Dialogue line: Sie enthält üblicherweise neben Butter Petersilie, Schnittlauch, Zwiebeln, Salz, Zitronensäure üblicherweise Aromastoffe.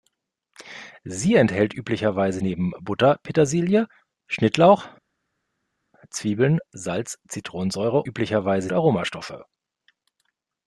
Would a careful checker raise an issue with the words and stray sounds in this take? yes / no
no